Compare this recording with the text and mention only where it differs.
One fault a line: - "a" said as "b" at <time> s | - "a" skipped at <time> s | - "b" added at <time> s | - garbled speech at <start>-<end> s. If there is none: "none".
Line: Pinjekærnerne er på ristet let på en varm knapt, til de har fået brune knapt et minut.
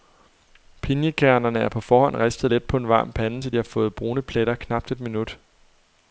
- "forhånd" added at 1.8 s
- "knapt" said as "pande" at 3.1 s
- "pletter" added at 4.2 s